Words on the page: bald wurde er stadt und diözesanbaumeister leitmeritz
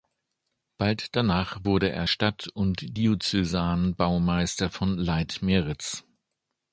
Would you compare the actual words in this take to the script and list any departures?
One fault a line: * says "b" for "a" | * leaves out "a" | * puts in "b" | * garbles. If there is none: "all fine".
* puts in "danach"
* puts in "von"